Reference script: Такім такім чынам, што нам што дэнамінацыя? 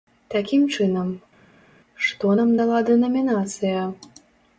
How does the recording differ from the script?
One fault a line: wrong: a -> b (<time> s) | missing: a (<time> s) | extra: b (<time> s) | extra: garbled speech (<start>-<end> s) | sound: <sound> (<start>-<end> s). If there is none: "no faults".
missing: такім (0.6 s)
wrong: што -> дала (2.6 s)